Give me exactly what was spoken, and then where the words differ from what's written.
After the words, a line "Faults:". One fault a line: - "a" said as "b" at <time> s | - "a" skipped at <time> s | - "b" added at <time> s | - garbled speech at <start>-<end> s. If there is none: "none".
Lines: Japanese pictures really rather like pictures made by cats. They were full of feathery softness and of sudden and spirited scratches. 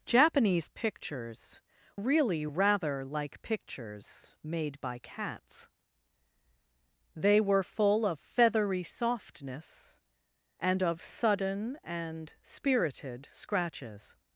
Japanese pictures really rather like pictures made by cats. They were full of feathery softness and of sudden and spirited scratches.
Faults:
none